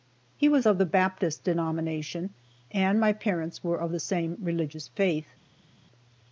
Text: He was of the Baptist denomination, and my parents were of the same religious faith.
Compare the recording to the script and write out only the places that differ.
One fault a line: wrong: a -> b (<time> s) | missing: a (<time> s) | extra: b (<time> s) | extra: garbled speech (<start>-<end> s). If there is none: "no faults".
no faults